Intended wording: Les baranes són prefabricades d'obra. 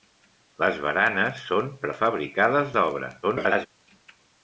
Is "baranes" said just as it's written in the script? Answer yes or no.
yes